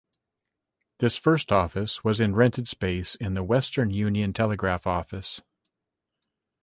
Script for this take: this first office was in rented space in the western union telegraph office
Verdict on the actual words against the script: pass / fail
pass